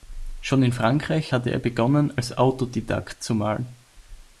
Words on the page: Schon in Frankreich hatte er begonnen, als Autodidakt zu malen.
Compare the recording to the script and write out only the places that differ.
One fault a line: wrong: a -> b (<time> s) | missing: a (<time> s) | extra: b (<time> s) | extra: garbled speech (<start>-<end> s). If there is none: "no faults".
no faults